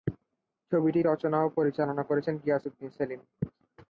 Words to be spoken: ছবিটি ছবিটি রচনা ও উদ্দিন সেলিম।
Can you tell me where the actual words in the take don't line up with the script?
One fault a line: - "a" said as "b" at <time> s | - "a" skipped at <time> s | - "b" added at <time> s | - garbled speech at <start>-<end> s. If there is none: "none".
- "ছবিটি" skipped at 1.0 s
- "পরিচালনা করেছেন গিয়াস" added at 1.6 s